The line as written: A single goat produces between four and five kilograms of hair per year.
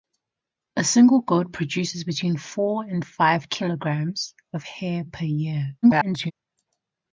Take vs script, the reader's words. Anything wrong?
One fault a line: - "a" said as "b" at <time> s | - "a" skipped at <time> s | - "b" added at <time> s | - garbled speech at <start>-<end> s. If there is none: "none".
- garbled speech at 5.8-6.3 s